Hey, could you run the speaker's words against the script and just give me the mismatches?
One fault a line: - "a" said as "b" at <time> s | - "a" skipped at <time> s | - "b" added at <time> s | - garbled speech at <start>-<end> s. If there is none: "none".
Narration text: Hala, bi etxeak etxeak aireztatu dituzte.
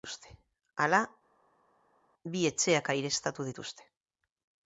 - "etxeak" skipped at 2.9 s